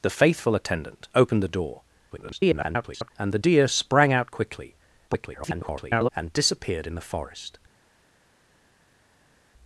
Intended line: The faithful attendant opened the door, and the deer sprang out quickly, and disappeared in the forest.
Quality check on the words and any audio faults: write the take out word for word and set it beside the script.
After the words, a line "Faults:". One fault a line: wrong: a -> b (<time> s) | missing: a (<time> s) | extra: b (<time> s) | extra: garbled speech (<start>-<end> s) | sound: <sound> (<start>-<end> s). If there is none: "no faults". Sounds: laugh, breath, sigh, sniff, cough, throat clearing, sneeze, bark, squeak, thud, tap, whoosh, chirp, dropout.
The faithful attendant opened the door, [garbled] and the deer sprang out quickly, [garbled] and disappeared in the forest.
Faults:
extra: garbled speech (2.1-3.1 s)
extra: garbled speech (5.1-6.1 s)